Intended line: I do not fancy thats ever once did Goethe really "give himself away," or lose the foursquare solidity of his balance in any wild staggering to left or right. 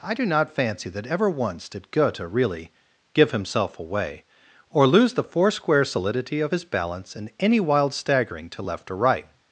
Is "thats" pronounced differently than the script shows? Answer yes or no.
yes